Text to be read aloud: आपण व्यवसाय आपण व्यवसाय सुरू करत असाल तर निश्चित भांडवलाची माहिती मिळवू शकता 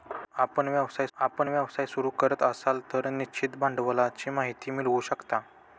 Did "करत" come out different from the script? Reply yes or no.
no